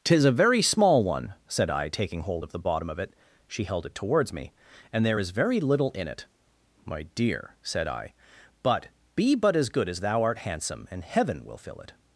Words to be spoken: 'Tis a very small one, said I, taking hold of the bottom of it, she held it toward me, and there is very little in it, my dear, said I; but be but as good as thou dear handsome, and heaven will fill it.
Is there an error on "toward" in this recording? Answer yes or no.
yes